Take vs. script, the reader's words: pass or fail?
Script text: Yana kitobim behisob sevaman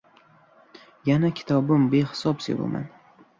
pass